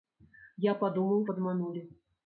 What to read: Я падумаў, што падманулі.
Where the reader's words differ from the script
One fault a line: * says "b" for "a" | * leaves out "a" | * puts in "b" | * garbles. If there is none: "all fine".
* leaves out "што"